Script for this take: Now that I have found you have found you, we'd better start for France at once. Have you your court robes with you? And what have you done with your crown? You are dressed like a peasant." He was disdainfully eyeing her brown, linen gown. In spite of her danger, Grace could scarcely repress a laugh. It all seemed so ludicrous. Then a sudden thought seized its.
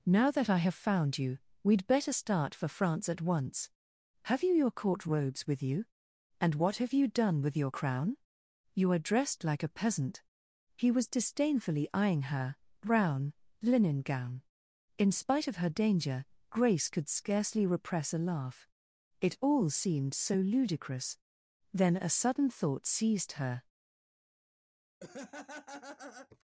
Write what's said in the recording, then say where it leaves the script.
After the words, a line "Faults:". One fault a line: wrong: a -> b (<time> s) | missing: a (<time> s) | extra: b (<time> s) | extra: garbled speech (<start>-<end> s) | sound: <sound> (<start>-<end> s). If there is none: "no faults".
Now that I have found you, we'd better start for France at once. Have you your court robes with you? And what have you done with your crown? You are dressed like a peasant." He was disdainfully eyeing her brown, linen gown. In spite of her danger, Grace could scarcely repress a laugh. It all seemed so ludicrous. Then a sudden thought seized her.
Faults:
missing: have found you (1.4 s)
wrong: its -> her (23.3 s)
sound: laugh (25.0-26.4 s)